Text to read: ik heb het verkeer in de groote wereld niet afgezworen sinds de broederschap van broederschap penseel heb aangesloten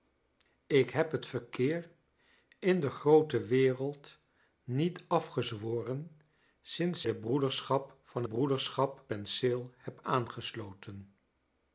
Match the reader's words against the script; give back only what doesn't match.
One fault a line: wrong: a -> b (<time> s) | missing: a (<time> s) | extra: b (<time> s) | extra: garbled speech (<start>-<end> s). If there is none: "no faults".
no faults